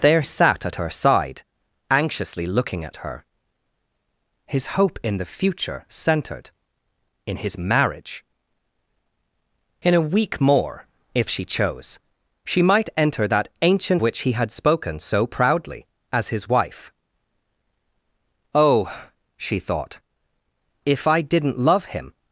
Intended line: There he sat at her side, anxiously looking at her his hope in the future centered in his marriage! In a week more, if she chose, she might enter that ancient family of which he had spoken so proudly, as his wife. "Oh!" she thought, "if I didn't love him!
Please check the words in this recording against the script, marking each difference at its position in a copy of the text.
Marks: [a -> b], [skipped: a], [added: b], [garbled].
There [skipped: he] sat at her side, anxiously looking at her his hope in the future centered in his marriage! In a week more, if she chose, she might enter that ancient [skipped: family of] which he had spoken so proudly, as his wife. "Oh!" she thought, "if I didn't love him!